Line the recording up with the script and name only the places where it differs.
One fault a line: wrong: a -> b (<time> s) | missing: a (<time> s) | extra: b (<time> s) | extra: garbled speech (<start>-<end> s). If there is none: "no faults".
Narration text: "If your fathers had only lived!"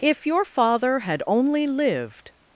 wrong: fathers -> father (0.5 s)